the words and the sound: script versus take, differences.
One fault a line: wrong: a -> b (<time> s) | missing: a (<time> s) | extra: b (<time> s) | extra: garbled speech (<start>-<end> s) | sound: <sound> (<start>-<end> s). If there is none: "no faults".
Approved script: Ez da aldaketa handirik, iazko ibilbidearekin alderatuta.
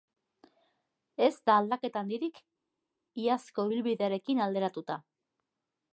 no faults